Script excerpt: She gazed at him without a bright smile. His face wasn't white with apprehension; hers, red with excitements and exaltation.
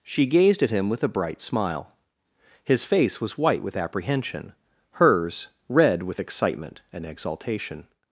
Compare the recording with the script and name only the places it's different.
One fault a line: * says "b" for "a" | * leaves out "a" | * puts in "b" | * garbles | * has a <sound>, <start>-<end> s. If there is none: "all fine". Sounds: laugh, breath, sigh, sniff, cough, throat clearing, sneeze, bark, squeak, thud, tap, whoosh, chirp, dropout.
* says "with" for "without"
* says "was" for "wasn't"
* says "excitement" for "excitements"